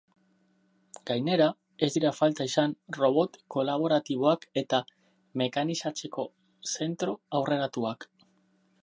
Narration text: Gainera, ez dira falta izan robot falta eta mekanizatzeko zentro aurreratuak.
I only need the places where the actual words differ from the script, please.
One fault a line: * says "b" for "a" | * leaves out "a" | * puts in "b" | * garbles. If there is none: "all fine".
* says "kolaboratiboak" for "falta"